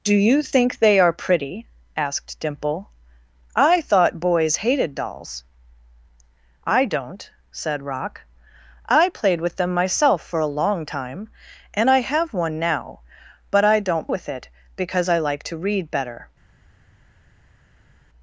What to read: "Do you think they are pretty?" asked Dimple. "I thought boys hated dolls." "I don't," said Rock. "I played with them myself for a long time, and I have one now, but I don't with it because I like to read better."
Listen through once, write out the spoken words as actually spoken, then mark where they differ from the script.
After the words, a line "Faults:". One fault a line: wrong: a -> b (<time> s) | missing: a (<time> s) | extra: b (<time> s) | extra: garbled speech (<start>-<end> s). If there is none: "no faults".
"Do you think they are pretty?" asked Dimple. "I thought boys hated dolls." "I don't," said Rock. "I played with them myself for a long time, and I have one now, but I don't with it because I like to read better."
Faults:
no faults